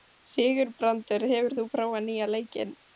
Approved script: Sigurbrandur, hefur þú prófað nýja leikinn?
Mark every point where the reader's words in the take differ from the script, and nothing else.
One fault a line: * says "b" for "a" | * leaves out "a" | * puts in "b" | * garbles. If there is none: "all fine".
all fine